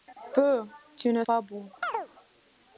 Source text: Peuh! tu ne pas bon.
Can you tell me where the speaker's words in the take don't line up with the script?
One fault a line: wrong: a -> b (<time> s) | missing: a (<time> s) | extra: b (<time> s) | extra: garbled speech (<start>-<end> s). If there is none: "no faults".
no faults